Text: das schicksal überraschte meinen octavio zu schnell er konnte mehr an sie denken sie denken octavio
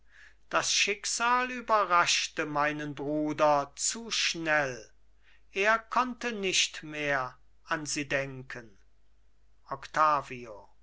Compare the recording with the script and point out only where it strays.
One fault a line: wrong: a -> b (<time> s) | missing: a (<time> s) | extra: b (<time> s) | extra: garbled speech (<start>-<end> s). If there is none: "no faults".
wrong: octavio -> bruder (3.0 s)
extra: nicht (6.3 s)
missing: sie denken (8.8 s)